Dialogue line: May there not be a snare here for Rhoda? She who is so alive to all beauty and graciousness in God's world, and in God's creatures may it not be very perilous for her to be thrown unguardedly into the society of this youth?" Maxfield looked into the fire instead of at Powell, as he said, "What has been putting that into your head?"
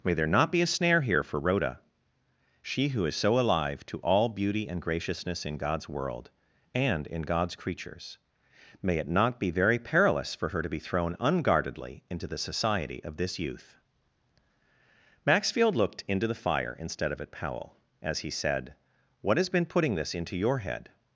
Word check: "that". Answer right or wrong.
wrong